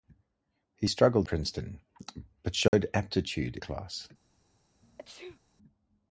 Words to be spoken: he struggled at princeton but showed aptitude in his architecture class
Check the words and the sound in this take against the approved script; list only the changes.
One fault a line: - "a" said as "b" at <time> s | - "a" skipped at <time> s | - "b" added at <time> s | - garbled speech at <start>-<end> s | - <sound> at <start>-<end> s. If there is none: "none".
- "at" skipped at 1.3 s
- dropout at 2.7-2.7 s
- "in his architecture" skipped at 3.6 s
- sneeze at 4.8-5.4 s